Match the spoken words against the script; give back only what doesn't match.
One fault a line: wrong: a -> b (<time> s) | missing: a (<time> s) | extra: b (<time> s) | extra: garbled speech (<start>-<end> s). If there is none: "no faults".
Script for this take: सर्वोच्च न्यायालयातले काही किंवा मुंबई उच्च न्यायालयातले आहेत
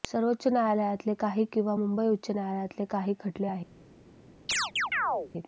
extra: काही खटले (2.9 s)